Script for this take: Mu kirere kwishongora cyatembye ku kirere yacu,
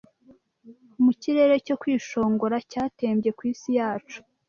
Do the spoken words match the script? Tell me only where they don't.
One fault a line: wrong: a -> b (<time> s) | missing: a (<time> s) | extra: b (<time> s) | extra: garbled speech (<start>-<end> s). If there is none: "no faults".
extra: cyo (1.6 s)
wrong: kirere -> isi (3.5 s)